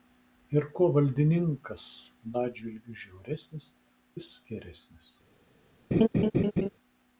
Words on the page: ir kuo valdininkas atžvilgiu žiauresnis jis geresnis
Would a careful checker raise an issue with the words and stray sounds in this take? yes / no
yes